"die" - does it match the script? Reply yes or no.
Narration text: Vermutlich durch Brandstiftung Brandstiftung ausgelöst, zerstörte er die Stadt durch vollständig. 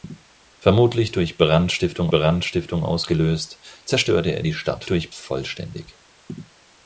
yes